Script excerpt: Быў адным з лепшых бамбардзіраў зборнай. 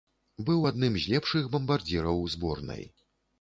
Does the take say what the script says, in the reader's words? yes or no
yes